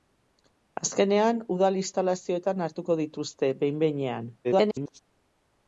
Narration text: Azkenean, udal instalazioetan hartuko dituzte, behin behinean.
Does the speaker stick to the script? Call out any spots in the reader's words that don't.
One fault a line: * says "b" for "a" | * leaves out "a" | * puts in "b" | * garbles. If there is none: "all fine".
* garbles